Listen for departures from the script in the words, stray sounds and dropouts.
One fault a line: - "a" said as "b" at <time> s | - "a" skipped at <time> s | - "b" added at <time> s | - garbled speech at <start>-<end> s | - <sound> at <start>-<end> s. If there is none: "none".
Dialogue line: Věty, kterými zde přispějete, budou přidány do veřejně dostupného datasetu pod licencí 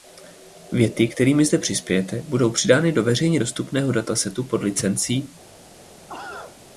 - cough at 6.1-6.6 s